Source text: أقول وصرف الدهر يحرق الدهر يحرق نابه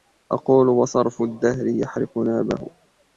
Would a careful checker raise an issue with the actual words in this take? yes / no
yes